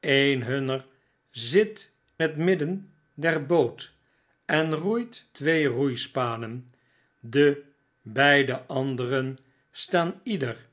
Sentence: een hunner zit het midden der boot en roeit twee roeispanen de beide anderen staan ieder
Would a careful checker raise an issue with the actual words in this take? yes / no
no